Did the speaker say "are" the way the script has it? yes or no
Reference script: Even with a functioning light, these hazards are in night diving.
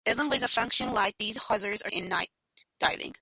yes